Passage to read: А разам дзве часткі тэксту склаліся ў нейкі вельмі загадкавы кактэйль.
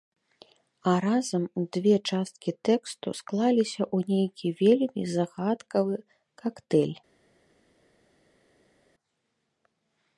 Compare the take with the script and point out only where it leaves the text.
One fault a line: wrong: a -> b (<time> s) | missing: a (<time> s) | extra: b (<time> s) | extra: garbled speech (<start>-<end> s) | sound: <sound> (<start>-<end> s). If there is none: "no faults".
no faults